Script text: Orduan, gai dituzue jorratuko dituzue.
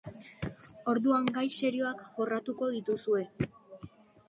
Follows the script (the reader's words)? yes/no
no